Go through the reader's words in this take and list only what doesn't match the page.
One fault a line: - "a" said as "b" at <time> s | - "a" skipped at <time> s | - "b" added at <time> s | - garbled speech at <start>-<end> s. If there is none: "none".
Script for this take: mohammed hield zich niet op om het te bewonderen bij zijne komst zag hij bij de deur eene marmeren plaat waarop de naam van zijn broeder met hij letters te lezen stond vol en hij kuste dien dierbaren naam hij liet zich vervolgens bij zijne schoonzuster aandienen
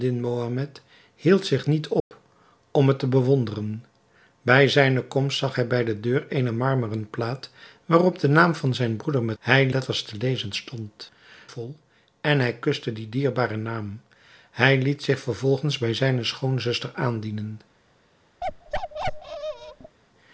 none